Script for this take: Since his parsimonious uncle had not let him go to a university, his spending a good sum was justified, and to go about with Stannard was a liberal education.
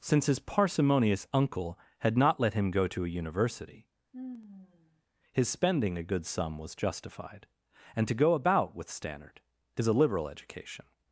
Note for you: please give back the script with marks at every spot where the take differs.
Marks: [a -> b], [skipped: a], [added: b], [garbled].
Since his parsimonious uncle had not let him go to a university, his spending a good sum was justified, and to go about with Stannard [was -> is] a liberal education.